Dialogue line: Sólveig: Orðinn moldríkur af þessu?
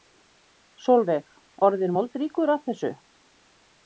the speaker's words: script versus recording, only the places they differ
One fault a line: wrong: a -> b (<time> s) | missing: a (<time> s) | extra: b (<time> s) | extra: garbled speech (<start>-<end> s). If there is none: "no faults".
no faults